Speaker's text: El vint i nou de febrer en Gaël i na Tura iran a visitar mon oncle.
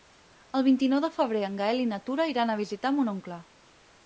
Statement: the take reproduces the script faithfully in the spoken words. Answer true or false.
true